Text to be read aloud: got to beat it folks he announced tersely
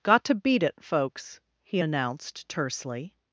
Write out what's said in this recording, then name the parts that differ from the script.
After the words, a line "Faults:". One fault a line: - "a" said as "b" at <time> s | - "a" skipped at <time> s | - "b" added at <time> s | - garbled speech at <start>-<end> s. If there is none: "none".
got to beat it folks he announced tersely
Faults:
none